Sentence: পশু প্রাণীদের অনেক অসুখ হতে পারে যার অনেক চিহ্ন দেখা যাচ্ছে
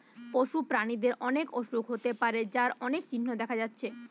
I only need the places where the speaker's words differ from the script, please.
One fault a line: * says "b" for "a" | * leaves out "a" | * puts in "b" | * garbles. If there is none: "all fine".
all fine